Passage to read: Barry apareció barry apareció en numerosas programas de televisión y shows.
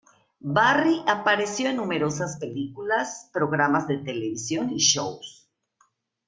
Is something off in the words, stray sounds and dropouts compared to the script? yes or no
yes